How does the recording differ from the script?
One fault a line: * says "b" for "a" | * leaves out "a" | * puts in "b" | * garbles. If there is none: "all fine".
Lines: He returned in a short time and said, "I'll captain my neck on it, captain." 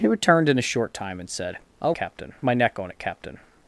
all fine